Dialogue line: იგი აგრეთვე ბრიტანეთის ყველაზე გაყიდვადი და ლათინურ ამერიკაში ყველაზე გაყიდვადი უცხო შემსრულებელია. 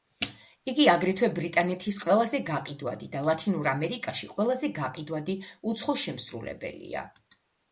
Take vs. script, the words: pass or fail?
pass